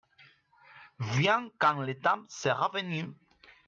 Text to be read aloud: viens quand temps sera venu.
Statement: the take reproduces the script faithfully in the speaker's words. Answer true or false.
false